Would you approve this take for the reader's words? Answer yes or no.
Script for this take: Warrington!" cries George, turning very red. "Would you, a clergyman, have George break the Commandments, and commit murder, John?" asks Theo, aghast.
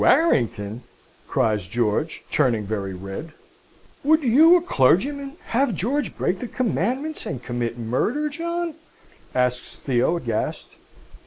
yes